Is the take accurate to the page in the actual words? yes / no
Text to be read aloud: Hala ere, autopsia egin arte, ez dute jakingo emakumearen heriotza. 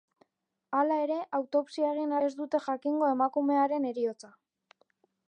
no